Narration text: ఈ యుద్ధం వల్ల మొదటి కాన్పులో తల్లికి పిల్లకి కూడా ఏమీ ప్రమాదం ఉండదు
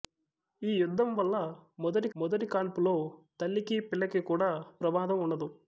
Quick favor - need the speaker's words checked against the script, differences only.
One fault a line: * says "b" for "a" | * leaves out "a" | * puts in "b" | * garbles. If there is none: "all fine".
* puts in "మొదటి"
* leaves out "ఏమీ"